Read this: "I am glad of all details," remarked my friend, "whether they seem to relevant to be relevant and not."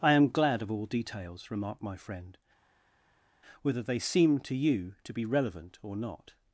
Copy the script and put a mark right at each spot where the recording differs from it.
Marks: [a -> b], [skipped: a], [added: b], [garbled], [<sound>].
"I am glad of all details," remarked my friend, "whether they seem to [relevant -> you] to be relevant [and -> or] not."